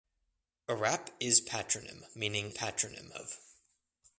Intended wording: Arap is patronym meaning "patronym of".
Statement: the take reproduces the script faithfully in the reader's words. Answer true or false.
true